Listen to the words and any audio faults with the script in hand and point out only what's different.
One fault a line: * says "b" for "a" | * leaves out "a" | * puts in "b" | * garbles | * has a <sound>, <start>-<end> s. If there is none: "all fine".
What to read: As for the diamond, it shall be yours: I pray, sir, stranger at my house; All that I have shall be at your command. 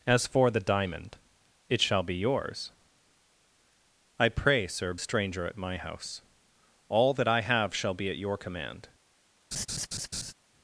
* has a laugh, 9.5-10.3 s